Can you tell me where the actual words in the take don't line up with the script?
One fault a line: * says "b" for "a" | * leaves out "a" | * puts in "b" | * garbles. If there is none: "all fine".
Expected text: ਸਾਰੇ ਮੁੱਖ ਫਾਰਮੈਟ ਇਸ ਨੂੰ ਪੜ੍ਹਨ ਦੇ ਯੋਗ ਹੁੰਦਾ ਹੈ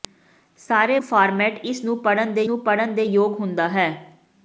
* leaves out "ਮੁੱਖ"
* puts in "ਨੂੰ ਪੜ੍ਹਨ ਦੇ"